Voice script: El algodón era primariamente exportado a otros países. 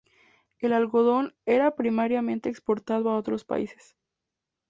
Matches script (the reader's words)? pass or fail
pass